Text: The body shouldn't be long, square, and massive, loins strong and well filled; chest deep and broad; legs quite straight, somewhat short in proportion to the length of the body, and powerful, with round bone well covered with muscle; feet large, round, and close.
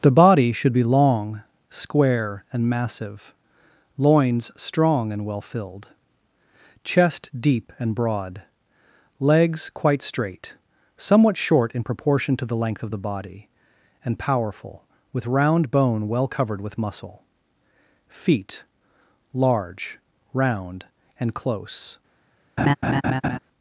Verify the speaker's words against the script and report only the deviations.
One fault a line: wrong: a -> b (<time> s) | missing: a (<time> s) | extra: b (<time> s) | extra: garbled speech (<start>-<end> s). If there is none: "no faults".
wrong: shouldn't -> should (0.5 s)